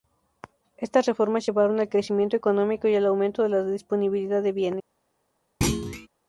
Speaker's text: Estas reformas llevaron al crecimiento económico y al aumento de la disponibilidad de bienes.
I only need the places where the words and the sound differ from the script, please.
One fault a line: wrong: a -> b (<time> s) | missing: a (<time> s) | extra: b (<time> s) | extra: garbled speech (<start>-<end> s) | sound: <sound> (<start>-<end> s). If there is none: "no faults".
sound: thud (5.6-6.1 s)